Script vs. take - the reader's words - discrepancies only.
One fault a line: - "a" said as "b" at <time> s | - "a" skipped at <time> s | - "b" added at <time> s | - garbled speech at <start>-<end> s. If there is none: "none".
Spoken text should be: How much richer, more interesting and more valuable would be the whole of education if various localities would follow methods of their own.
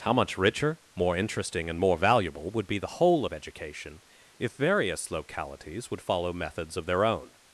none